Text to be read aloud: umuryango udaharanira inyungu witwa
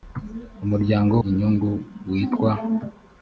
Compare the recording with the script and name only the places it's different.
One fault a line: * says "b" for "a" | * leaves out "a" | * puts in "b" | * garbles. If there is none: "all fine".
* leaves out "udaharanira"